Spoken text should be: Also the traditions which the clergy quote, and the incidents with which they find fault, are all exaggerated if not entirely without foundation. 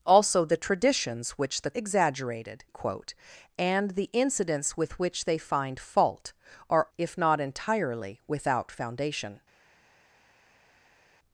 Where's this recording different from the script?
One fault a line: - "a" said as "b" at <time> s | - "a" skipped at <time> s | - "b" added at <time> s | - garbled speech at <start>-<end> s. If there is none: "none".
- "clergy" said as "exaggerated" at 1.7 s
- "all exaggerated" skipped at 6.9 s